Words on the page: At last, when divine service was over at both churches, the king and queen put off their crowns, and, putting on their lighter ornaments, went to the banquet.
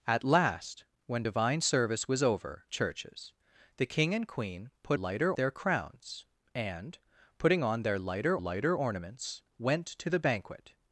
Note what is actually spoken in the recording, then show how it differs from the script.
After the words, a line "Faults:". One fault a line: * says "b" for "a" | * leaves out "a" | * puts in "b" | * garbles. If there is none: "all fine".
At last, when divine service was over churches, the king and queen put lighter their crowns, and, putting on their lighter lighter ornaments, went to the banquet.
Faults:
* leaves out "at both"
* says "lighter" for "off"
* puts in "lighter"